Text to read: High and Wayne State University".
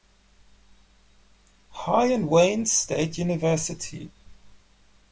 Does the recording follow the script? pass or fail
pass